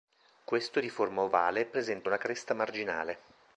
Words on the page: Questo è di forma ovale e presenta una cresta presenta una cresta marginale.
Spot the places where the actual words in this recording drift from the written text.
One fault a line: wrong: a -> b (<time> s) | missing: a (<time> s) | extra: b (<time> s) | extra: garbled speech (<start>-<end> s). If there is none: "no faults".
missing: presenta una cresta (2.5 s)